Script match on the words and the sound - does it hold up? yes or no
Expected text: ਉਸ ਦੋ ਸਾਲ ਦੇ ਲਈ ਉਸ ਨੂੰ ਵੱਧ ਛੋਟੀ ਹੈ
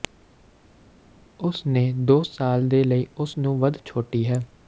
no